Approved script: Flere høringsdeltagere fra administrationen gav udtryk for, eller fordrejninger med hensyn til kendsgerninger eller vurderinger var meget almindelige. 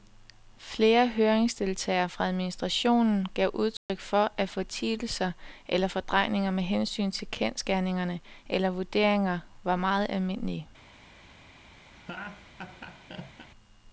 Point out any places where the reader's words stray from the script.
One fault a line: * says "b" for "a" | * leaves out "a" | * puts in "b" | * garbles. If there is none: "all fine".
* puts in "at fortielser"